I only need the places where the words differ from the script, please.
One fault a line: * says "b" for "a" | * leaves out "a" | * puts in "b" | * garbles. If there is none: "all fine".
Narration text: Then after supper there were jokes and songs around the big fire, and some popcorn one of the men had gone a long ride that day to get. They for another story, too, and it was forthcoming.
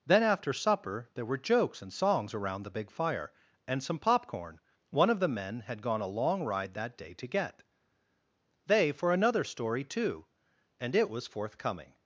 all fine